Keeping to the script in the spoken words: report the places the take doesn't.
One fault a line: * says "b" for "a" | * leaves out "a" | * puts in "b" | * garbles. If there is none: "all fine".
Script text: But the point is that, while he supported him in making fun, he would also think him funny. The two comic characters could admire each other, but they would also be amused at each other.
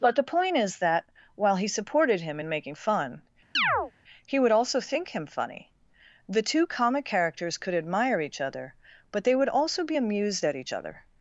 all fine